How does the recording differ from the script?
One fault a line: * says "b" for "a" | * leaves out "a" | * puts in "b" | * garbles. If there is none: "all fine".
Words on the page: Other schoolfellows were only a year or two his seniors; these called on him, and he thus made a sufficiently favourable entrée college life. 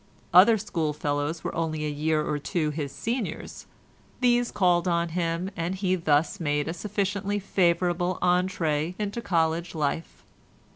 * puts in "into"